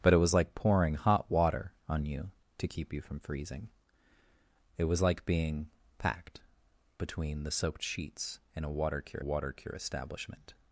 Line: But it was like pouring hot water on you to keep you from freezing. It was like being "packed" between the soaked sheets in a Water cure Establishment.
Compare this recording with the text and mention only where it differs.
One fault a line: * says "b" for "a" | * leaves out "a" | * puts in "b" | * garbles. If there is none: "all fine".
* puts in "Water cure"